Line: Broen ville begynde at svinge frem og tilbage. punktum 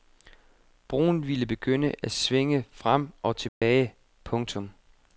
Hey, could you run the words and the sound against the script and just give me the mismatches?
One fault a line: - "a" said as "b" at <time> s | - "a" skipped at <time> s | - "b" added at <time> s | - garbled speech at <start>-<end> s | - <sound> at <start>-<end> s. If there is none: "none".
- dropout at 3.5-3.6 s